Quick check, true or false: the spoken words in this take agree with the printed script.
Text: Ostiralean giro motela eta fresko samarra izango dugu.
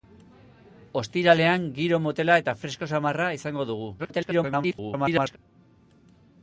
false